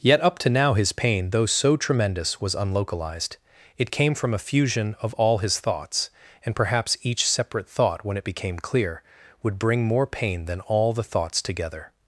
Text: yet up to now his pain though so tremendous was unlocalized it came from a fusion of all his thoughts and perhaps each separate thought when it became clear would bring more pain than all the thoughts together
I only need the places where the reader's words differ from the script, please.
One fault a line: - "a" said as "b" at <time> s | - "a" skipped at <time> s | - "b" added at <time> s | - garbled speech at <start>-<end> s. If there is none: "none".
none